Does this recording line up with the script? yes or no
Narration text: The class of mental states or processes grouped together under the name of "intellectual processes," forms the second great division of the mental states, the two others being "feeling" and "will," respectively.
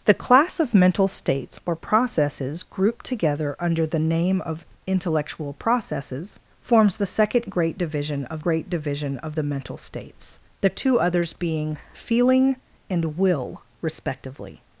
no